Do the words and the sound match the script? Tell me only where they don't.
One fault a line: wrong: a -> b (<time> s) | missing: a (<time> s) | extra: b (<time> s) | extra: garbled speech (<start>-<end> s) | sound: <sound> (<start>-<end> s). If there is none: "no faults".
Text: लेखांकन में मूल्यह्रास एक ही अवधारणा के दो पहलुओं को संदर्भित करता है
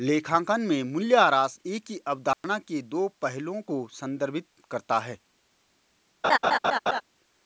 sound: dropout (2.3-2.4 s)
sound: laugh (6.2-7.0 s)